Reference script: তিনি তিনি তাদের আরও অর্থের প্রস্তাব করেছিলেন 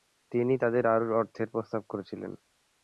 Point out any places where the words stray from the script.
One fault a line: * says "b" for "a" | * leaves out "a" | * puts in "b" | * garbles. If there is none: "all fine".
* leaves out "তিনি"